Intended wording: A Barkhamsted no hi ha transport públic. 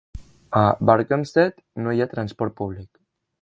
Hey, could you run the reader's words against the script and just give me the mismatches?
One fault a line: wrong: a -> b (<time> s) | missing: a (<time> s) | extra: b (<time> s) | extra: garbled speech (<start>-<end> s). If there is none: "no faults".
no faults